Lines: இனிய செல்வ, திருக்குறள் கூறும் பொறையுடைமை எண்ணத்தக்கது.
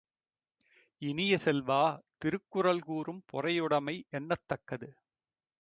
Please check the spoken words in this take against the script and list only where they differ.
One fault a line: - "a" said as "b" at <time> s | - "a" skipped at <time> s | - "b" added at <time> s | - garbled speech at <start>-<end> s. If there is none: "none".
none